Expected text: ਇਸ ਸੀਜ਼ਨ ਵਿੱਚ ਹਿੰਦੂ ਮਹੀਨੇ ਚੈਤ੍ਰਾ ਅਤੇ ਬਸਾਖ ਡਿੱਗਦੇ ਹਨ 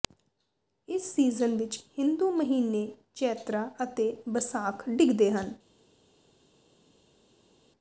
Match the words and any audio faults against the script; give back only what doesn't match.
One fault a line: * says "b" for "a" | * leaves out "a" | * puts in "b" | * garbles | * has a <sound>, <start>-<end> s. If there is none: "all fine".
all fine